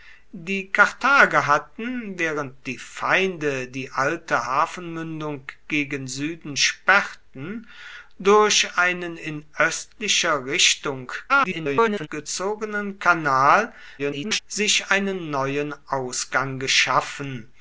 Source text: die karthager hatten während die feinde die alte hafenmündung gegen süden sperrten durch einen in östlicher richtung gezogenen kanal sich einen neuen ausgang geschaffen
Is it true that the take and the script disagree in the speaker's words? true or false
true